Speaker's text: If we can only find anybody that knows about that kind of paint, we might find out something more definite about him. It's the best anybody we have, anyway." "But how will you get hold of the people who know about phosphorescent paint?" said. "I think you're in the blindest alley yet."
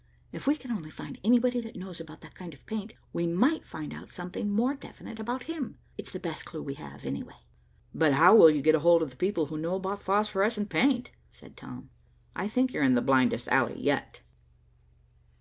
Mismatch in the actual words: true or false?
true